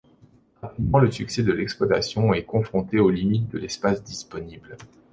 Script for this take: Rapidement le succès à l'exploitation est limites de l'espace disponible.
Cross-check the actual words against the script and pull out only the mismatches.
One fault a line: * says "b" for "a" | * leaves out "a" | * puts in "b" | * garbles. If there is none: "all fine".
* says "de" for "à"
* puts in "confronté aux"